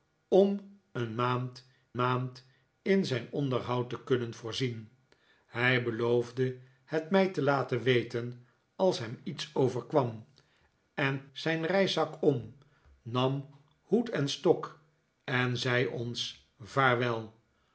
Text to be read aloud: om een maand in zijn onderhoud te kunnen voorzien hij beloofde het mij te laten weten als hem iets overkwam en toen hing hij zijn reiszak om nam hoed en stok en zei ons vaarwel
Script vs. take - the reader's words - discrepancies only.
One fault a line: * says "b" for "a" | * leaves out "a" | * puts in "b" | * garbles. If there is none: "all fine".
* puts in "maand"
* leaves out "toen hing hij"